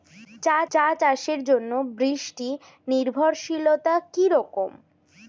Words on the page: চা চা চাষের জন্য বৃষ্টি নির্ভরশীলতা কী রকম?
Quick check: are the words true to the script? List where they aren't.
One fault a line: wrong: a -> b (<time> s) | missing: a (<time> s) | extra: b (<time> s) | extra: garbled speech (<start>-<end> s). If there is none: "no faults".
no faults